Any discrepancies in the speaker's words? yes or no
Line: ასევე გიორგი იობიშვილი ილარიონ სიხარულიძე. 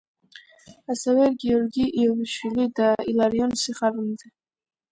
yes